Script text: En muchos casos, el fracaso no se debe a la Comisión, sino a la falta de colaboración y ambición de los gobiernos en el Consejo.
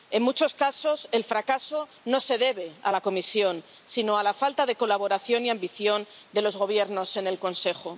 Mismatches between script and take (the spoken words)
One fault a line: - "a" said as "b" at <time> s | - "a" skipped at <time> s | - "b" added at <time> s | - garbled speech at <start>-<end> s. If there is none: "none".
none